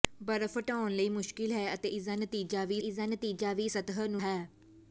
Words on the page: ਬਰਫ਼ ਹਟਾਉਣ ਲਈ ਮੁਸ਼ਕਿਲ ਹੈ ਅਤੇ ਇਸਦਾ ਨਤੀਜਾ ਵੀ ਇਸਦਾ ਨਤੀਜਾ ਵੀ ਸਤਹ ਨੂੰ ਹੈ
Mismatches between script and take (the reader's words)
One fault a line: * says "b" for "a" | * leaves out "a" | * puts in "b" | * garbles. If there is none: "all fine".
all fine